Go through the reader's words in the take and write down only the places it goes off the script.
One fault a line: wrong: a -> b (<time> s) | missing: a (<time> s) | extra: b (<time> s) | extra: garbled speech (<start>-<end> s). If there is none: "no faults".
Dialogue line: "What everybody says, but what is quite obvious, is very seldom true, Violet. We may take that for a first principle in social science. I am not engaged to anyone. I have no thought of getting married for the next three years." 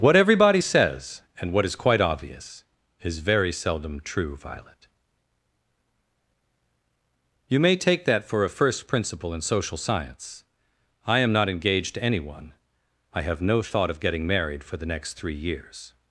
wrong: but -> and (1.4 s)
wrong: We -> You (7.5 s)